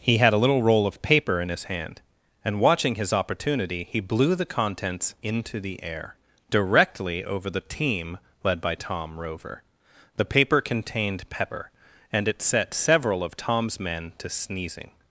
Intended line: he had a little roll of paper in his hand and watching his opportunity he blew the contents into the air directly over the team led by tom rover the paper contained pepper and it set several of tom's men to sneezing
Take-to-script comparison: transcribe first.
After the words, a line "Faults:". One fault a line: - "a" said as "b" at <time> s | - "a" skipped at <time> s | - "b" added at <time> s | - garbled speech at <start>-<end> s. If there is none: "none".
he had a little roll of paper in his hand and watching his opportunity he blew the contents into the air directly over the team led by tom rover the paper contained pepper and it set several of tom's men to sneezing
Faults:
none